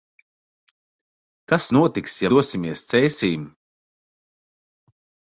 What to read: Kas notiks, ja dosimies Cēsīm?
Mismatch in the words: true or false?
false